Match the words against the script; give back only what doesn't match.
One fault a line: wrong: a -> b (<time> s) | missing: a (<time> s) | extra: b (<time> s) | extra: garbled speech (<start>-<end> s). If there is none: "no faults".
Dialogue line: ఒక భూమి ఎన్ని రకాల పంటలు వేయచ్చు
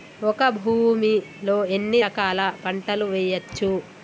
extra: లో (1.4 s)